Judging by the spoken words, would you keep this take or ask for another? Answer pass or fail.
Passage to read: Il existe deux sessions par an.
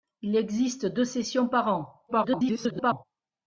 fail